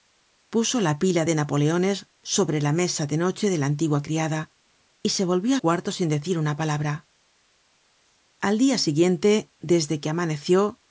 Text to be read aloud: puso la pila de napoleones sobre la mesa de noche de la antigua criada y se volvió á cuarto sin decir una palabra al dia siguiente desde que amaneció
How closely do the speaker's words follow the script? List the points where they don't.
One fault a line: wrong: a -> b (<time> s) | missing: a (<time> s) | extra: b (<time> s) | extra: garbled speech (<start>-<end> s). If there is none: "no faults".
no faults